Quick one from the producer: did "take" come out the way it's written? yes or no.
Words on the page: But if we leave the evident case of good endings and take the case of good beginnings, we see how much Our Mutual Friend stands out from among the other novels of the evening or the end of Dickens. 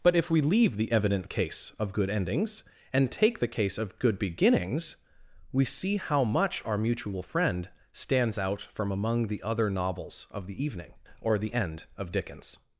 yes